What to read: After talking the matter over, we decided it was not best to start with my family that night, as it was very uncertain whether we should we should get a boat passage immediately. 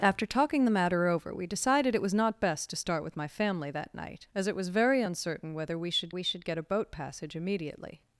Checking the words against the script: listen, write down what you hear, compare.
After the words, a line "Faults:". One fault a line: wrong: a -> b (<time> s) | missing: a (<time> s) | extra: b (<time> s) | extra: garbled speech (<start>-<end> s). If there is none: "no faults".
After talking the matter over, we decided it was not best to start with my family that night, as it was very uncertain whether we should we should get a boat passage immediately.
Faults:
no faults